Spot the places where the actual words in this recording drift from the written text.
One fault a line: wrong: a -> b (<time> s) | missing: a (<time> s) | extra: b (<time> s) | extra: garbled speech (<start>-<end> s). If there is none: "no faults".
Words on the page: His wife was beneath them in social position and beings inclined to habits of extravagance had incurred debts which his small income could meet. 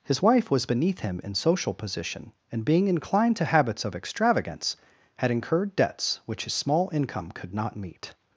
wrong: them -> him (1.0 s)
wrong: beings -> being (2.6 s)
extra: not (7.5 s)